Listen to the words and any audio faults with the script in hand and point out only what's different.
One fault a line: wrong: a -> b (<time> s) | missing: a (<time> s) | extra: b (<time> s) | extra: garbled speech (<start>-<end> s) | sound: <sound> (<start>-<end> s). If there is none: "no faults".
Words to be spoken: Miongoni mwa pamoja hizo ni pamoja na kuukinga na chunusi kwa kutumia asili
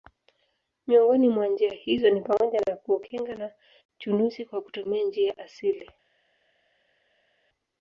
wrong: pamoja -> njia (1.5 s)
extra: njia (5.0 s)